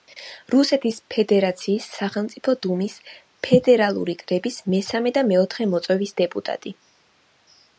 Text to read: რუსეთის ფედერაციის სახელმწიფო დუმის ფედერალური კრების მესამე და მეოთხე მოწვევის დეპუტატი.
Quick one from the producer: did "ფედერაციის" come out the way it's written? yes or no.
yes